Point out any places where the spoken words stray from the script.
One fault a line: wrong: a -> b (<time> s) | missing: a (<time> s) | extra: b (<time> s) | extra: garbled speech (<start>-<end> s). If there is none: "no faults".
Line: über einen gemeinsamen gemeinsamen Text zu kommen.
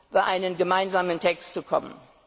missing: gemeinsamen (1.2 s)